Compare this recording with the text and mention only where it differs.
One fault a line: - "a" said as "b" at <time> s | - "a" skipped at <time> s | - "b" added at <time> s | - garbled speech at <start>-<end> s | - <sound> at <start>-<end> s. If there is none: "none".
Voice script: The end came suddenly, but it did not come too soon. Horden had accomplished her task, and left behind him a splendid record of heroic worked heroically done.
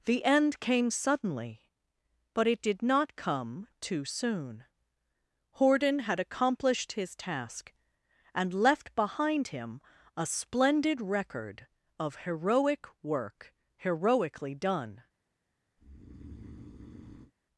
- "her" said as "his" at 6.9 s
- "worked" said as "work" at 13.0 s
- breath at 15.8-17.3 s